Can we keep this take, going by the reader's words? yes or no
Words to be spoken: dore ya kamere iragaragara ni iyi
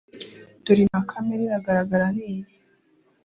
yes